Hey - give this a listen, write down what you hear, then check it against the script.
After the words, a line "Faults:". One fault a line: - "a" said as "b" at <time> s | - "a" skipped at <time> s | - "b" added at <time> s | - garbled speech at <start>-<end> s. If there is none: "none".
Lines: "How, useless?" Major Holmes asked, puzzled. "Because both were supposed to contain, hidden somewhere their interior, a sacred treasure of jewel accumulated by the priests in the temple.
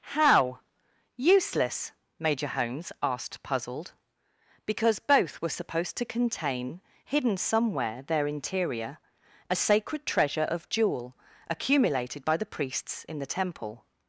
"How, useless?" Major Holmes asked, puzzled. "Because both were supposed to contain, hidden somewhere their interior, a sacred treasure of jewel accumulated by the priests in the temple.
Faults:
none